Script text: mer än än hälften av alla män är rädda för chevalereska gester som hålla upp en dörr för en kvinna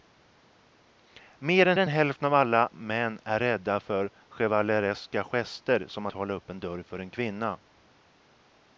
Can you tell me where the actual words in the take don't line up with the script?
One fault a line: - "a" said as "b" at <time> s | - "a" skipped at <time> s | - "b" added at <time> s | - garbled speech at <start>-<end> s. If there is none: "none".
none